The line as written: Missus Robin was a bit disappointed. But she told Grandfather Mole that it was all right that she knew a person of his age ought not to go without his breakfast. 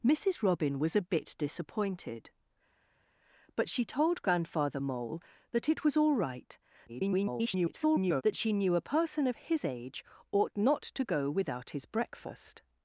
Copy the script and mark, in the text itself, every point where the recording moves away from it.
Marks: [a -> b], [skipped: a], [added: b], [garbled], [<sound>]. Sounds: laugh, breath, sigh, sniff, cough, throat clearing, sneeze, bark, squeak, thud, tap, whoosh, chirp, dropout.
Missus Robin was a bit disappointed. But she told Grandfather Mole that it was all right [garbled] that she knew a person of his age ought not to go without his breakfast.